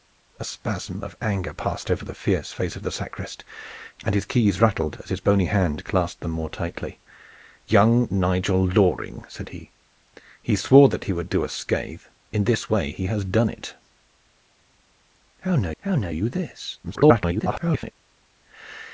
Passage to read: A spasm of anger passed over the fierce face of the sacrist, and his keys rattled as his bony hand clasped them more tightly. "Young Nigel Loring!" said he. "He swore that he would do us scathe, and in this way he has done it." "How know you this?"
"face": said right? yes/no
yes